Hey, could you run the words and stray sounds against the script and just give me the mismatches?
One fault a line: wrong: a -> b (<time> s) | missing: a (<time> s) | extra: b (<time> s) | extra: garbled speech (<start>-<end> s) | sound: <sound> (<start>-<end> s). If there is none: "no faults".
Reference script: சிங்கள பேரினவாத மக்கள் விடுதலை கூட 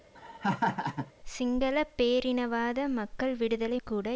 sound: laugh (0.1-1.1 s)